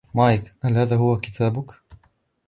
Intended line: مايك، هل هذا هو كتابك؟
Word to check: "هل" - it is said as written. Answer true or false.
true